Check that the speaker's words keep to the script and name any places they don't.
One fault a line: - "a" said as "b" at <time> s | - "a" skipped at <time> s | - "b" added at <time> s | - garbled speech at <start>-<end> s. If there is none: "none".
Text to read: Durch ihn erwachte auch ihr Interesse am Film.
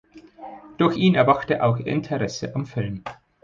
none